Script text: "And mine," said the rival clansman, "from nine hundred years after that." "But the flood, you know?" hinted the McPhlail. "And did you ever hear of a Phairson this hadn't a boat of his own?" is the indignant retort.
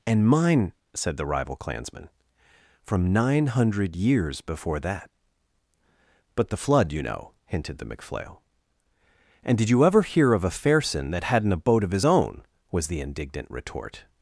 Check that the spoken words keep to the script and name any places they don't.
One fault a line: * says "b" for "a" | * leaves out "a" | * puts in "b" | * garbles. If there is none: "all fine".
* says "before" for "after"
* says "that" for "this"
* says "was" for "is"